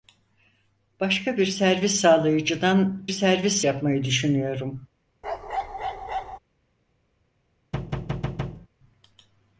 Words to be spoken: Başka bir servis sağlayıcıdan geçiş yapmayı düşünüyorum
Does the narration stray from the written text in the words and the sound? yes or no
yes